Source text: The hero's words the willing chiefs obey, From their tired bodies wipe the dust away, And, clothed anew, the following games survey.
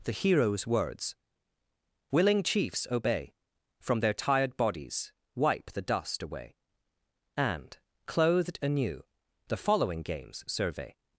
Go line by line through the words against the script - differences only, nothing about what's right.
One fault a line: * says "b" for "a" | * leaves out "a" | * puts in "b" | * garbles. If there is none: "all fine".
* leaves out "the"